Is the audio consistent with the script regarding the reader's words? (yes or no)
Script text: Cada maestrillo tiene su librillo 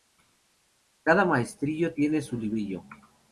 yes